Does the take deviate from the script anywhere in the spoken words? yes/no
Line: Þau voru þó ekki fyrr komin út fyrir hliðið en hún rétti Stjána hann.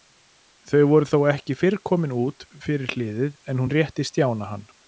no